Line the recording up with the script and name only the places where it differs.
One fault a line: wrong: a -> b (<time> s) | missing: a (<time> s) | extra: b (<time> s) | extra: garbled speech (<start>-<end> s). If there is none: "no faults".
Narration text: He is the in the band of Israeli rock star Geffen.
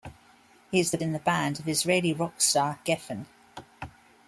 no faults